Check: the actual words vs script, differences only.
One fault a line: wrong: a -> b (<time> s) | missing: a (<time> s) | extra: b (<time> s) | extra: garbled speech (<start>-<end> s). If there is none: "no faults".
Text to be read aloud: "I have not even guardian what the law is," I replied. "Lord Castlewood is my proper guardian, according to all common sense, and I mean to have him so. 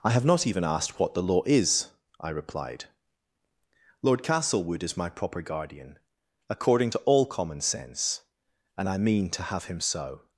wrong: guardian -> asked (0.6 s)